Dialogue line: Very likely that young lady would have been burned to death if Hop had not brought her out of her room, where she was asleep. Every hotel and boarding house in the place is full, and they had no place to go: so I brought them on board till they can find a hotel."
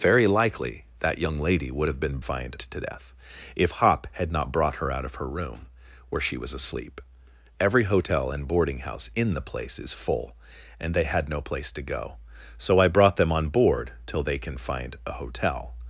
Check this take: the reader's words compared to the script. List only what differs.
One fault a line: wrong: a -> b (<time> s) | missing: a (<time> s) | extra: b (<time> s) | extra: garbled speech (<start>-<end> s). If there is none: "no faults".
wrong: burned -> find (2.2 s)